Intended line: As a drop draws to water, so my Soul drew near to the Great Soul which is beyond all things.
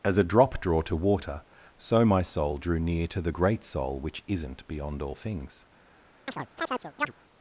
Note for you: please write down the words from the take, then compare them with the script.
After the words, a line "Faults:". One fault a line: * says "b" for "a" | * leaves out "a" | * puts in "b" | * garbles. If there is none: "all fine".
As a drop draw to water, so my Soul drew near to the Great Soul which isn't beyond all things.
Faults:
* says "draw" for "draws"
* says "isn't" for "is"